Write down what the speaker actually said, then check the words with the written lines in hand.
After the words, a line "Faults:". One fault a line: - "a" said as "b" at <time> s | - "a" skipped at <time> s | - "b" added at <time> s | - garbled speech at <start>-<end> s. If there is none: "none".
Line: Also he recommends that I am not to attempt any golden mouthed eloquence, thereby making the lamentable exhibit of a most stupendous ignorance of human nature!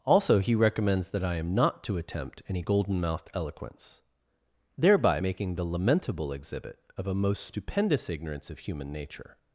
Also he recommends that I am not to attempt any golden mouthed eloquence, thereby making the lamentable exhibit of a most stupendous ignorance of human nature!
Faults:
none